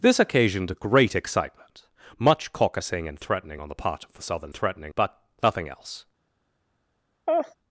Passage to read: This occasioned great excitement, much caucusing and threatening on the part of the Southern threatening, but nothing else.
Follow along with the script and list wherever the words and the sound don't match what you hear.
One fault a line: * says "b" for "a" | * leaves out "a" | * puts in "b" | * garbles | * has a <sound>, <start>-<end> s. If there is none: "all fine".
* has a laugh, 7.3-7.5 s